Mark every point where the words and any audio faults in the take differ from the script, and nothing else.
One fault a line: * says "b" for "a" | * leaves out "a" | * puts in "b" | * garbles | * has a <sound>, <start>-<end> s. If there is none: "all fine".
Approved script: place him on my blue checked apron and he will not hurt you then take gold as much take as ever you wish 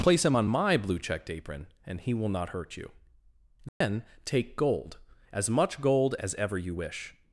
* has a dropout, 3.7-3.8 s
* says "gold" for "take"